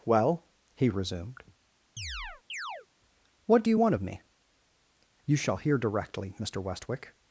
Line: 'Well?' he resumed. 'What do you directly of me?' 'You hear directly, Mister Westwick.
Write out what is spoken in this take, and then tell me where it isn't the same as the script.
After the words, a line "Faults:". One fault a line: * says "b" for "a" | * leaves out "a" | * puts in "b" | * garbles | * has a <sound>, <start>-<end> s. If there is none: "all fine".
'Well?' he resumed. 'What do you want of me?' 'You shall hear directly, Mister Westwick.
Faults:
* has a chirp, 2.0-2.9 s
* says "want" for "directly"
* puts in "shall"